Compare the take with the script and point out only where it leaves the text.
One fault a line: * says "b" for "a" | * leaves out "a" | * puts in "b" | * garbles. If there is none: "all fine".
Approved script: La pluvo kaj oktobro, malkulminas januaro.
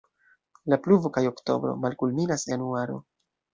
all fine